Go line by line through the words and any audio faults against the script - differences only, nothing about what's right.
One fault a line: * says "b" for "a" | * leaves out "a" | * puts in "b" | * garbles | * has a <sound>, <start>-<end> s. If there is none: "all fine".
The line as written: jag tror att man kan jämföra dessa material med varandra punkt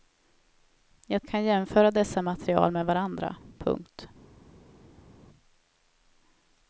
* leaves out "tror att man"